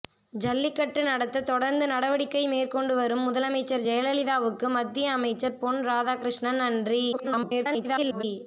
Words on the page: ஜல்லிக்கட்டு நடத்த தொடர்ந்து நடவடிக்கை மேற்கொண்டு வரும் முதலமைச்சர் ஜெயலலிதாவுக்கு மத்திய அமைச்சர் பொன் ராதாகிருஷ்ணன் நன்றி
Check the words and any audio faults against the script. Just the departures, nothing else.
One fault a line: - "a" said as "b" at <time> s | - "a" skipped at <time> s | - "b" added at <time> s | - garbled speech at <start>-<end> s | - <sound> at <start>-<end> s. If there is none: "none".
- garbled speech at 7.1-8.2 s